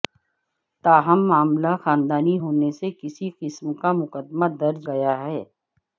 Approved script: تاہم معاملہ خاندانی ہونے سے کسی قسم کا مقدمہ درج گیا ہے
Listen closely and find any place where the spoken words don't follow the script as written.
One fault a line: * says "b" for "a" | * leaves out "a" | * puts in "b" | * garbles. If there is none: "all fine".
all fine